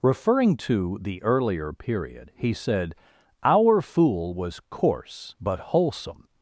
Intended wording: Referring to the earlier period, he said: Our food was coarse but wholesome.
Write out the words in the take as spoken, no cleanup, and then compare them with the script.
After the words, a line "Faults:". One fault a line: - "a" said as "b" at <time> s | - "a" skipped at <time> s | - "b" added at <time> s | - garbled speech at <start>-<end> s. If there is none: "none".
Referring to the earlier period, he said: Our fool was coarse but wholesome.
Faults:
- "food" said as "fool" at 3.8 s